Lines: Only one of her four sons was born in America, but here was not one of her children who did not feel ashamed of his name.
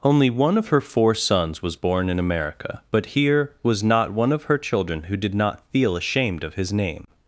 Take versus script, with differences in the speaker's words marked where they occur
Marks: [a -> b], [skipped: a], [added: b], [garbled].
Only one of her four sons was born in America, but here was not one of her children who did not feel ashamed of his name.